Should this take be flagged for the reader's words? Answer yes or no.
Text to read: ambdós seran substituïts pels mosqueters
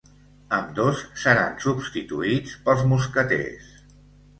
no